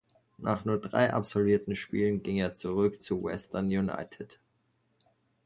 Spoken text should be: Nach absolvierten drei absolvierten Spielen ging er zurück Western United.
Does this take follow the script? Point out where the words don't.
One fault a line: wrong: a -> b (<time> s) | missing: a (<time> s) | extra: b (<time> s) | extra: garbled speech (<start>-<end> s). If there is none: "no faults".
wrong: absolvierten -> nur (0.7 s)
extra: zu (3.0 s)